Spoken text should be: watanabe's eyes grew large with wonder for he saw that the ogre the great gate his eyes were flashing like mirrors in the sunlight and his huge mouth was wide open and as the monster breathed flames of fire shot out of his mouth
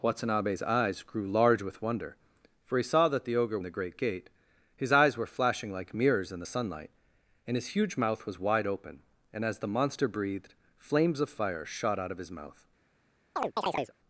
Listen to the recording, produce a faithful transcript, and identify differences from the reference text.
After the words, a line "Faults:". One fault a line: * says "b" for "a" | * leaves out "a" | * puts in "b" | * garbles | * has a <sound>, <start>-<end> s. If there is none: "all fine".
watanabe's eyes grew large with wonder for he saw that the ogre the great gate his eyes were flashing like mirrors in the sunlight and his huge mouth was wide open and as the monster breathed flames of fire shot out of his mouth
Faults:
* has a chirp, 13.4-13.9 s